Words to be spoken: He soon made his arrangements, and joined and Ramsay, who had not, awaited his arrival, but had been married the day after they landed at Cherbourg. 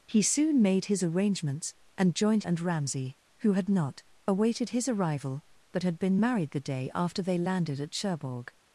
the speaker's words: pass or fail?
pass